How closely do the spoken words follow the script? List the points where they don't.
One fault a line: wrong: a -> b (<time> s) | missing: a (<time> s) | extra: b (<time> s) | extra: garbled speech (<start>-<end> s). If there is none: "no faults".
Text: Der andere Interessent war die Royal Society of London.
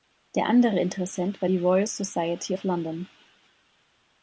no faults